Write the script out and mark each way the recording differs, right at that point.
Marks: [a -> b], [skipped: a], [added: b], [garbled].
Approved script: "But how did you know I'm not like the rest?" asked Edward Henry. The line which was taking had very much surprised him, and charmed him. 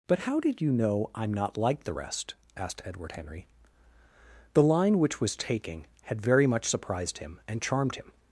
"But how did you know I'm not like the rest?" asked Edward Henry. The line which was taking had very much surprised him, and charmed him.